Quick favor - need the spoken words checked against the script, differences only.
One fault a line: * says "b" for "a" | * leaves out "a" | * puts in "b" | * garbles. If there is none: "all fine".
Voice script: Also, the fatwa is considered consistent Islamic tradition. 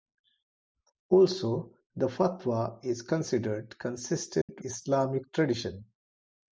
all fine